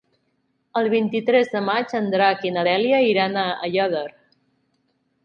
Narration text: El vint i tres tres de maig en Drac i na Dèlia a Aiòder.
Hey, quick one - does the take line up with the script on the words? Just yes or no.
no